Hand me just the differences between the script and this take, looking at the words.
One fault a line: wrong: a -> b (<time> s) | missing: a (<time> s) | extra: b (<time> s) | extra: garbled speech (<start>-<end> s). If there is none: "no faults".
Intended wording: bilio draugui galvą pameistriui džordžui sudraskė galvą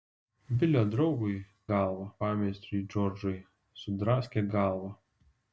no faults